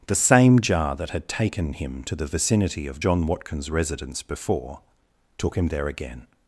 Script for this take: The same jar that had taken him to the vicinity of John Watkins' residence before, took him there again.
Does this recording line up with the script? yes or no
yes